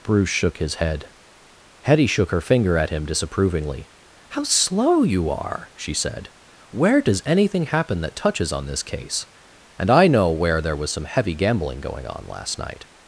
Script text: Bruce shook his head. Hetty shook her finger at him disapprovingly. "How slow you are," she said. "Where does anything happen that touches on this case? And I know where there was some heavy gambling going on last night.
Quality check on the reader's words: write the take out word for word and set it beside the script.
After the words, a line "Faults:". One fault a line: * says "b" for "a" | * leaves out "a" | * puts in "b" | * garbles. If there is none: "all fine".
Bruce shook his head. Hetty shook her finger at him disapprovingly. "How slow you are," she said. "Where does anything happen that touches on this case? And I know where there was some heavy gambling going on last night.
Faults:
all fine